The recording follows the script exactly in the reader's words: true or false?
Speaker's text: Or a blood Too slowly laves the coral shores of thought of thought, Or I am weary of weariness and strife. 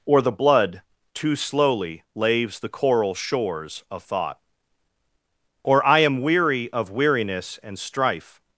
false